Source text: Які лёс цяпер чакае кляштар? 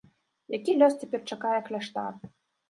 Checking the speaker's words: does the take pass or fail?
pass